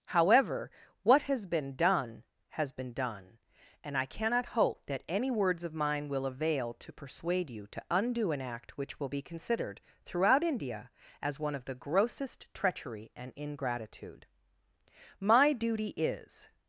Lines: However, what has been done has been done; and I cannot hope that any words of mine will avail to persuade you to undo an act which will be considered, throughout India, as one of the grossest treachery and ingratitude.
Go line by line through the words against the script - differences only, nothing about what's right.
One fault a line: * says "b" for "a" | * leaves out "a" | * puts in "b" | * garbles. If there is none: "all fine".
* puts in "My duty is"